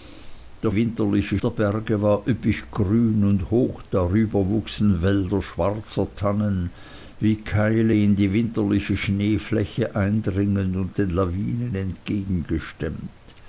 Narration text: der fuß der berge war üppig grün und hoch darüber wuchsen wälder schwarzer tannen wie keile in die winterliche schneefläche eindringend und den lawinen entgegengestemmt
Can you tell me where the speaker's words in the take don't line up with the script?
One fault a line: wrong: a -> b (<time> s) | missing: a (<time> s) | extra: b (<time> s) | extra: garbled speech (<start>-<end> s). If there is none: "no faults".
wrong: fuß -> winterliche (0.7 s)